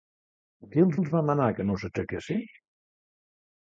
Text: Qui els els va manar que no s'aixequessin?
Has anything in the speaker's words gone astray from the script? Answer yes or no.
no